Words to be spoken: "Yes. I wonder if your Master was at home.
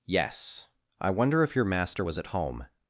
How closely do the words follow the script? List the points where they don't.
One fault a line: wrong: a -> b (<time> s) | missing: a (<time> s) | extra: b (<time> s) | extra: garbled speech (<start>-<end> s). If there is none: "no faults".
no faults